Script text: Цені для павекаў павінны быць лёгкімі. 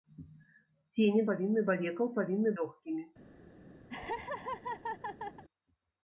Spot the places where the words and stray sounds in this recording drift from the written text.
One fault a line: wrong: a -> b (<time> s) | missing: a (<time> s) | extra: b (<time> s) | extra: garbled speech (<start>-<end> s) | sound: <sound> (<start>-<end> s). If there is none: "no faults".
wrong: для -> павінны (1.3 s)
missing: быць (2.5 s)
sound: laugh (3.9-5.4 s)